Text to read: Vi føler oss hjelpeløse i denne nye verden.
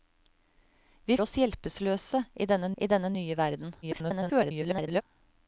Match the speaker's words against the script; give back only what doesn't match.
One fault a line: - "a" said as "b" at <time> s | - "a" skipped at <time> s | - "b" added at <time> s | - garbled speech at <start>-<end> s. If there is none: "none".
- "føler" skipped at 1.2 s
- "i denne" added at 2.8 s
- garbled speech at 3.8-5.0 s